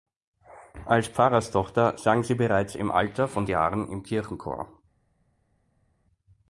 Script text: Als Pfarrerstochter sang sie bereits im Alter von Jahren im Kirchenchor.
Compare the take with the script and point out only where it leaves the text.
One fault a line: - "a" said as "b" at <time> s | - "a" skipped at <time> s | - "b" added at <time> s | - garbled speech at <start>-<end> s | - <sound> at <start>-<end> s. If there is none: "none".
none